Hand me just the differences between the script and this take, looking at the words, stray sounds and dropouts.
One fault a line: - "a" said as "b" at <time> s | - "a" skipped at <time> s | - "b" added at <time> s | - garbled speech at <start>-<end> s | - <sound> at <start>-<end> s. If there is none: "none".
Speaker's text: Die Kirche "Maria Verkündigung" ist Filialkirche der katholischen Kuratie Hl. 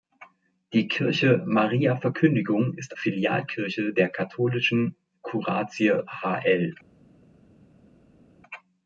none